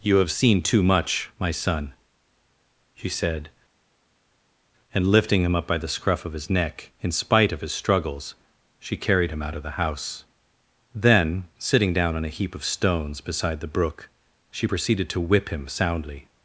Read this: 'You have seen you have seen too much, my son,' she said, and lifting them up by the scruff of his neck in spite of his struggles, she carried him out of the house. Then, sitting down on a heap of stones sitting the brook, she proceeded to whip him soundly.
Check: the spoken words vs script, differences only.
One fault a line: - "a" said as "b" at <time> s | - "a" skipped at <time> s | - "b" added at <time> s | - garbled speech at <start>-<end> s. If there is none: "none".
- "you have seen" skipped at 0.6 s
- "them" said as "him" at 5.4 s
- "sitting" said as "beside" at 13.2 s